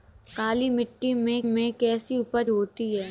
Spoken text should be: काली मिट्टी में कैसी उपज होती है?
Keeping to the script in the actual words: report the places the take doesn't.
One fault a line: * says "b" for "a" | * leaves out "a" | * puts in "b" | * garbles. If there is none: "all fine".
* puts in "में"